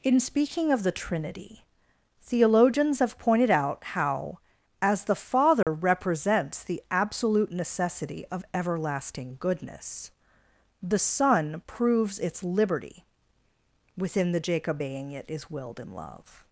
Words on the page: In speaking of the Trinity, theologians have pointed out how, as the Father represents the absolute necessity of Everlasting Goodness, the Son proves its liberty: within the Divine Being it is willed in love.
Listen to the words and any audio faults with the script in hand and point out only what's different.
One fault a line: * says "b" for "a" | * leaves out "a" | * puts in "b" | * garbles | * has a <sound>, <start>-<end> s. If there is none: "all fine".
* has a dropout, 5.6-5.7 s
* says "Jacob" for "Divine"